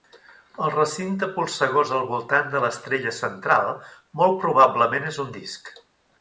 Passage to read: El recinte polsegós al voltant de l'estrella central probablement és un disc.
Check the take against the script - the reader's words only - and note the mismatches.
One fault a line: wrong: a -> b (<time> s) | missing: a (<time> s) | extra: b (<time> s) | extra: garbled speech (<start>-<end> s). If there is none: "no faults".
extra: molt (4.2 s)